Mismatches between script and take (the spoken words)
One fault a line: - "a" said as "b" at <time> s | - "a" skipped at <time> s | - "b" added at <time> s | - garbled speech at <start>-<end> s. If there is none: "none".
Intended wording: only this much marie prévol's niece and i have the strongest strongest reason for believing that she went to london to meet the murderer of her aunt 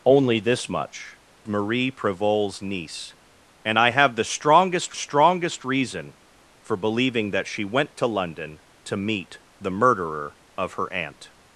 none